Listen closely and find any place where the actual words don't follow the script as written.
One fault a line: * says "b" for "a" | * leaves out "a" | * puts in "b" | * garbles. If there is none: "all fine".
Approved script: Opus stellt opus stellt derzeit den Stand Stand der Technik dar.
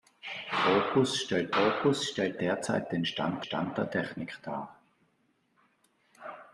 all fine